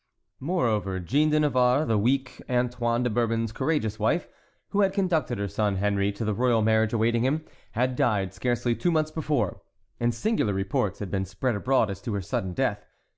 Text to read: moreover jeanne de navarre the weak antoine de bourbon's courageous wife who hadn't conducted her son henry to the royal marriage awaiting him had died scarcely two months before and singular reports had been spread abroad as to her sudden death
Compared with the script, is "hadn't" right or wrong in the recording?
wrong